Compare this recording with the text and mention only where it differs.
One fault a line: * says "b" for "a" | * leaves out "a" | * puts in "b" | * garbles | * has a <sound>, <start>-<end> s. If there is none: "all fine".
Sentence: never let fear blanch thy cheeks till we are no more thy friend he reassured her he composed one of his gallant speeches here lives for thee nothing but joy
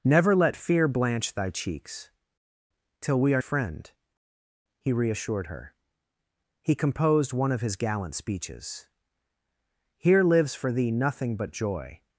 * leaves out "no more thy"